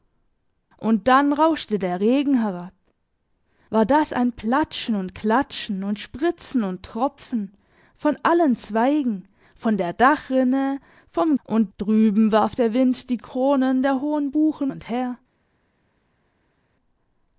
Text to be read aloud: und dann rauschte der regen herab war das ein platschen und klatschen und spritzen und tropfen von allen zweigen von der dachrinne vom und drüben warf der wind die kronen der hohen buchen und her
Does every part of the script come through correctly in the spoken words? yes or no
yes